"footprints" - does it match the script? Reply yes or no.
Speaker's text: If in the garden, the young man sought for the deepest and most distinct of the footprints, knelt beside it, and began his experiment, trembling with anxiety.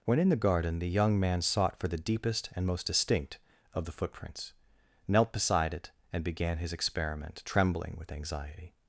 yes